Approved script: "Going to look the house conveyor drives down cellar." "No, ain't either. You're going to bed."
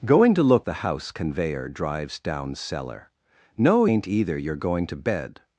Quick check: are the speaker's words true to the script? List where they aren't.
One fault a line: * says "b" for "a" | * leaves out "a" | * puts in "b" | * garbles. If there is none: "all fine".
all fine